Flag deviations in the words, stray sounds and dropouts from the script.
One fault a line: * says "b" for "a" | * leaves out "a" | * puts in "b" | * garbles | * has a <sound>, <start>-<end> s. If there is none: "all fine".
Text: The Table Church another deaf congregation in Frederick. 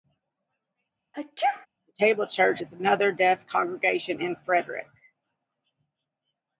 * has a sneeze, 1.1-1.7 s
* puts in "is"